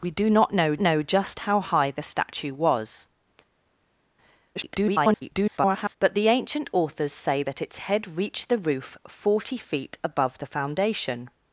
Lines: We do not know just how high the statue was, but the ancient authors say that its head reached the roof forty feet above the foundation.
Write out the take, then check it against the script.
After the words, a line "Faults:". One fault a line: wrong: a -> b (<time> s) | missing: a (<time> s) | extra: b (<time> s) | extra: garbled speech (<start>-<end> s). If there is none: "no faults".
We do not know know just how high the statue was, [garbled] but the ancient authors say that its head reached the roof forty feet above the foundation.
Faults:
extra: know (0.8 s)
extra: garbled speech (4.6-6.0 s)